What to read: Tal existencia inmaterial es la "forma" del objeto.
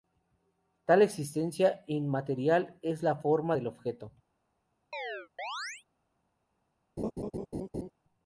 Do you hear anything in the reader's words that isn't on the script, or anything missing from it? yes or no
no